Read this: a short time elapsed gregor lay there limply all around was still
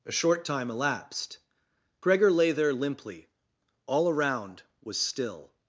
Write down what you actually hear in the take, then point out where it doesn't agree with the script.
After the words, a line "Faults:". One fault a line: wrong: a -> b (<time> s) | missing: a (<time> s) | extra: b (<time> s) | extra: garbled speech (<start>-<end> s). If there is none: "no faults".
a short time elapsed gregor lay there limply all around was still
Faults:
no faults